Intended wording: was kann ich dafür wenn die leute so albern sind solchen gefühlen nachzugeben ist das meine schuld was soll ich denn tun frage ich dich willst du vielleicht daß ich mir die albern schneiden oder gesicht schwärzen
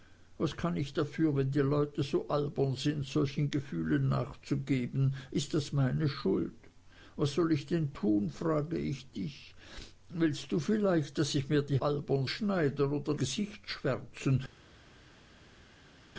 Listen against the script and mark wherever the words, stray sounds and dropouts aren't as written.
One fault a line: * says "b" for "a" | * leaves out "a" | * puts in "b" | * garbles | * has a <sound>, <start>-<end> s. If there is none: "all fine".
all fine